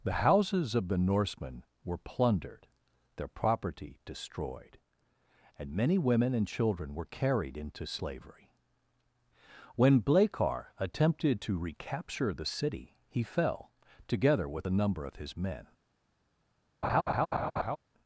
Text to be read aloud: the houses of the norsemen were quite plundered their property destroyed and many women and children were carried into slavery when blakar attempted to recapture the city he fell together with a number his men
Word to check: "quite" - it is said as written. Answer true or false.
false